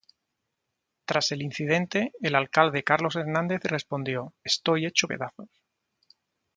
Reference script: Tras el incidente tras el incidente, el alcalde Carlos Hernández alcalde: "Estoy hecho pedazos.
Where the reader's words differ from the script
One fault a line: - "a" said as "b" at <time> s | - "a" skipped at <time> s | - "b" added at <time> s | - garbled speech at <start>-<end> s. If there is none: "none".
- "tras" skipped at 2.1 s
- "incidente el" skipped at 2.3 s
- "alcalde" said as "respondió" at 3.6 s